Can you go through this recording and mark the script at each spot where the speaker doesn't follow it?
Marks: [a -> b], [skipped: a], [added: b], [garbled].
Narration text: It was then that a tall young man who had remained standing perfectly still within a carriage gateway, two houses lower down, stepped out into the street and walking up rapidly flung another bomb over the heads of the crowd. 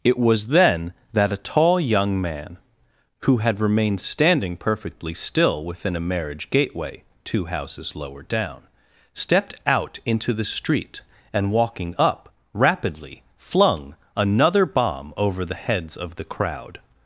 It was then that a tall young man who had remained standing perfectly still within a [carriage -> marriage] gateway, two houses lower down, stepped out into the street and walking up rapidly flung another bomb over the heads of the crowd.